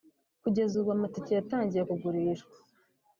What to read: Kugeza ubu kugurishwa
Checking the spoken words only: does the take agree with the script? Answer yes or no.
no